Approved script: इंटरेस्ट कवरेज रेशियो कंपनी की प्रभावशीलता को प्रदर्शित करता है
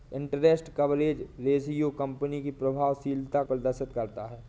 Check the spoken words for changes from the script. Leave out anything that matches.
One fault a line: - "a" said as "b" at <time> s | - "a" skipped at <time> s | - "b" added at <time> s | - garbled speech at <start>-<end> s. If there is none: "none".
- "को" skipped at 3.4 s